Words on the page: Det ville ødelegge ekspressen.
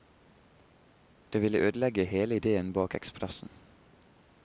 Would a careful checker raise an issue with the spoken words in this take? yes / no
yes